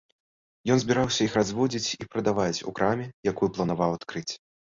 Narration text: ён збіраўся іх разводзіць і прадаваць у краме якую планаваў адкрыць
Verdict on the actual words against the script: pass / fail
pass